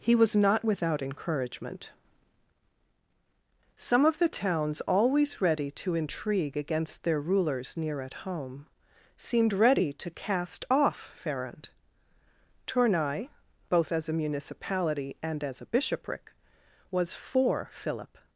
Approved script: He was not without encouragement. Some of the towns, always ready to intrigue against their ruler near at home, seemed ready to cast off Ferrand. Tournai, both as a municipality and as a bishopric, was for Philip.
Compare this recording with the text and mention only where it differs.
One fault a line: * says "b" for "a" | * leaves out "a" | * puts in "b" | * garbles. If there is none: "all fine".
* says "rulers" for "ruler"